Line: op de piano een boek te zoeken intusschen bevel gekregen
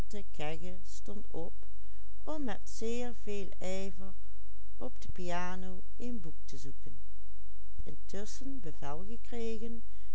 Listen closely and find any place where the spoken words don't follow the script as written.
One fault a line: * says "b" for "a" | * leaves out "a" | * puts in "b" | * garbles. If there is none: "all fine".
all fine